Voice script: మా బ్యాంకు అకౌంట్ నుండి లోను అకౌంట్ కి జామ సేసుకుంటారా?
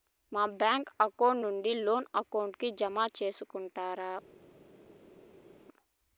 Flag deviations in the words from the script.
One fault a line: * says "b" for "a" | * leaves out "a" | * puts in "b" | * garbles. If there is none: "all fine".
all fine